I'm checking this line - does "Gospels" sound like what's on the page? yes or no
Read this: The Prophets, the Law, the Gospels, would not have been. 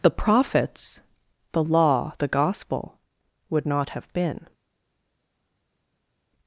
no